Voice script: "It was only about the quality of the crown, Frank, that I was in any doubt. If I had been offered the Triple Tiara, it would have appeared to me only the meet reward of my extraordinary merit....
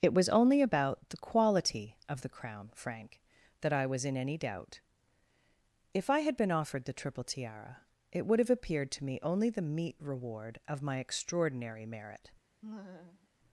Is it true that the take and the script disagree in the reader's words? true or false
false